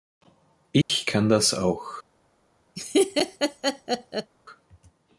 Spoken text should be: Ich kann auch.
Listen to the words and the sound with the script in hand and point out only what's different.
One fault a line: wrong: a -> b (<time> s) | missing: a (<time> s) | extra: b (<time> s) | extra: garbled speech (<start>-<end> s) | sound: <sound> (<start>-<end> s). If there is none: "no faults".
sound: dropout (0.8-0.9 s)
extra: das (1.3 s)
sound: laugh (2.8-4.3 s)